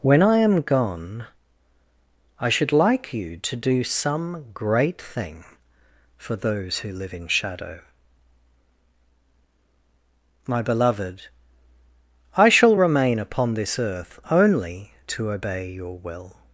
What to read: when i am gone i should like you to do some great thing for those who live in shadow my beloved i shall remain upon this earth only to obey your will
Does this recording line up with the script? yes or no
yes